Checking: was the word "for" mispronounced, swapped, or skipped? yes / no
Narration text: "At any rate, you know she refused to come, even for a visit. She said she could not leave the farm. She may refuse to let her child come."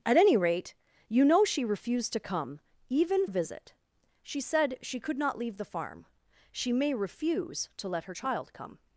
yes